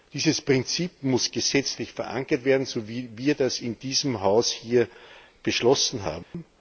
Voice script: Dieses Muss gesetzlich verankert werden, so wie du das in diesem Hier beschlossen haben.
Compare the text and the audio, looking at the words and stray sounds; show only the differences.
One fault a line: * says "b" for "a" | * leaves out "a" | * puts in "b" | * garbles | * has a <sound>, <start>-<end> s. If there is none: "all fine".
* puts in "Prinzip"
* says "wir" for "du"
* puts in "Haus"
* has a dropout, 6.2-6.3 s